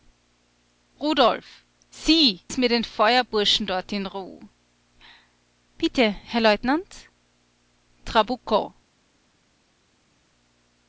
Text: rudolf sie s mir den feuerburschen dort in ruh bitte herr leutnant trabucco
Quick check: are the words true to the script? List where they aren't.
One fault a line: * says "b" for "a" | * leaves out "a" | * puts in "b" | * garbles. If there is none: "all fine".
all fine